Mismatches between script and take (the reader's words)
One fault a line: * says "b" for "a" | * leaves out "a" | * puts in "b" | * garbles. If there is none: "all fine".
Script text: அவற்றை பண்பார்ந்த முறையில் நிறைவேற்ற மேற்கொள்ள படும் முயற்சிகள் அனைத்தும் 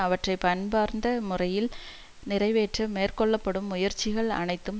all fine